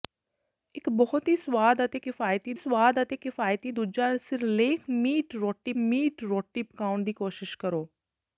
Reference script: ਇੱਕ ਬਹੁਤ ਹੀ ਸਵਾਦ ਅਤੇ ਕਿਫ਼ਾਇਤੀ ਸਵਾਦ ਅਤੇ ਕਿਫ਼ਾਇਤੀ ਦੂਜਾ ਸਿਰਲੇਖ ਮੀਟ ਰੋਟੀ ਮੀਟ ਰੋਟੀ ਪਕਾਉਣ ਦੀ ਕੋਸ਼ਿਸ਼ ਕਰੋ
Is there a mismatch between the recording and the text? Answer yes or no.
no